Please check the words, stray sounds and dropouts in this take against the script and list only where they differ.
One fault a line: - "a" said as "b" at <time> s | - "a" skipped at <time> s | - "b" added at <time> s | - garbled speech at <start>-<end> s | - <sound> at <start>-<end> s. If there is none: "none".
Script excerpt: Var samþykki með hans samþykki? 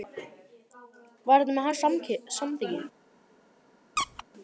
- "samþykki" said as "þetta" at 1.4 s
- squeak at 4.0-4.2 s